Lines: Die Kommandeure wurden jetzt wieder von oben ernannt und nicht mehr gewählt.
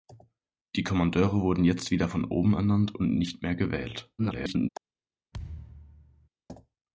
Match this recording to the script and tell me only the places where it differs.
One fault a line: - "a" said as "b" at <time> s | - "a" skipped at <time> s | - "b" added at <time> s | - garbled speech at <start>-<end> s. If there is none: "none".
- garbled speech at 4.2-4.7 s